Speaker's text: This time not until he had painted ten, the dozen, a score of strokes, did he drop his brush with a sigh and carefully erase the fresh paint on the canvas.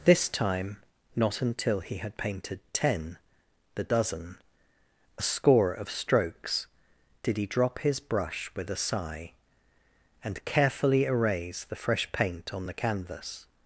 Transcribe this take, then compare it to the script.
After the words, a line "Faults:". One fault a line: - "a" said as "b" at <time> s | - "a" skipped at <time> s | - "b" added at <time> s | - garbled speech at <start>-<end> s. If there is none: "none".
This time not until he had painted ten, the dozen, a score of strokes, did he drop his brush with a sigh and carefully erase the fresh paint on the canvas.
Faults:
none